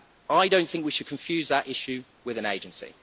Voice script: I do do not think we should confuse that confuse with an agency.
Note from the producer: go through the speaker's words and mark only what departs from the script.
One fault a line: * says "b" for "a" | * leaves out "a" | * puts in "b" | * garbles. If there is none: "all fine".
* leaves out "do"
* says "issue" for "confuse"